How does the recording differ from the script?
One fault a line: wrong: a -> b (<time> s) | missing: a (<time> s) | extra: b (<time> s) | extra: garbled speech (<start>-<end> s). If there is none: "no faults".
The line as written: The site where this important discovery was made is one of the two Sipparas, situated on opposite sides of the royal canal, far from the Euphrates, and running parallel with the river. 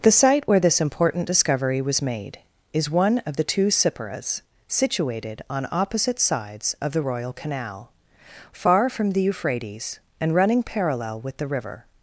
no faults